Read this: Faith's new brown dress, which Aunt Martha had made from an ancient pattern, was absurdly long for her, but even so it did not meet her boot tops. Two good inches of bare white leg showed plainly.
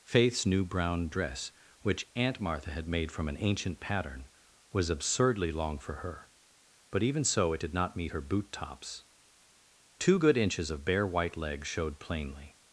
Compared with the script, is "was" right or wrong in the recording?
right